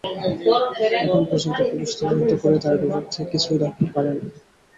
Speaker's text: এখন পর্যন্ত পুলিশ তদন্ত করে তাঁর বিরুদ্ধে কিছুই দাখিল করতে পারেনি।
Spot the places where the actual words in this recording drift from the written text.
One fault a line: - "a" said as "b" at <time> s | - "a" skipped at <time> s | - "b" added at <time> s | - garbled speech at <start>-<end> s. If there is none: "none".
- "করতে" skipped at 3.9 s